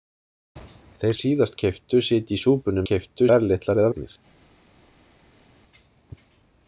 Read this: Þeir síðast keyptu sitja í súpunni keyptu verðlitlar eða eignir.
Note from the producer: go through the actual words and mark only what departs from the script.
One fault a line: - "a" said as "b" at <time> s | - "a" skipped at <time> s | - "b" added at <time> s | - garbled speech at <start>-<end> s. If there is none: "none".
none